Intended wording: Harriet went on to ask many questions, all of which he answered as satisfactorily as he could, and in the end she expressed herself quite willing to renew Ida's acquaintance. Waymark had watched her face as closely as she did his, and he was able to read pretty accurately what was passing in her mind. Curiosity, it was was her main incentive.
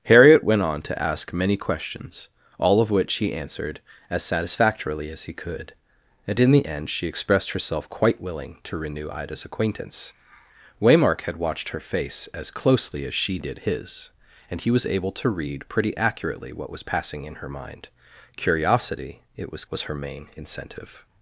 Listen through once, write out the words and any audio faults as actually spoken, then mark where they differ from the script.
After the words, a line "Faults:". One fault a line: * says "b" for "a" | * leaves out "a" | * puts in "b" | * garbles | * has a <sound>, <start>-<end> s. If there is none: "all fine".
Harriet went on to ask many questions, all of which he answered as satisfactorily as he could, and in the end she expressed herself quite willing to renew Ida's acquaintance. Waymark had watched her face as closely as she did his, and he was able to read pretty accurately what was passing in her mind. Curiosity, it was was her main incentive.
Faults:
all fine